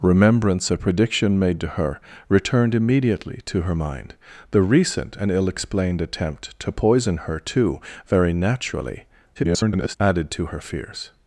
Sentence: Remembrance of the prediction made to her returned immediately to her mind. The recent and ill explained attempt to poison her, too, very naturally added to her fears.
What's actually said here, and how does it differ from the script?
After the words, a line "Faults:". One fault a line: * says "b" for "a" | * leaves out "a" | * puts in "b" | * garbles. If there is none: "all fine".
Remembrance the prediction made to her returned immediately to her mind. The recent and ill explained attempt to poison her, too, very naturally [garbled] added to her fears.
Faults:
* leaves out "of"
* garbles